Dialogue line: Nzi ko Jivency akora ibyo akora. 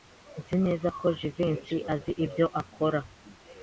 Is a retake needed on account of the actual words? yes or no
yes